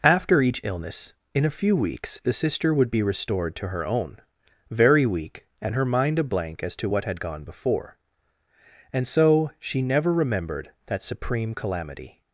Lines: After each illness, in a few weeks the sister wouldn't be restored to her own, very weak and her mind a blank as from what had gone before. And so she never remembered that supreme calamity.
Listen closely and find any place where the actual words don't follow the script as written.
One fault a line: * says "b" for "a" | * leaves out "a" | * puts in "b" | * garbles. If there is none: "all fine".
* says "would" for "wouldn't"
* says "to" for "from"